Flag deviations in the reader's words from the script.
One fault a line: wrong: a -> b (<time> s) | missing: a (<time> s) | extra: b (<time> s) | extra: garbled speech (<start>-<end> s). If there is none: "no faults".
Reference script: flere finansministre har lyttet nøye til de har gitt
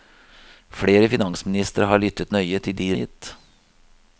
no faults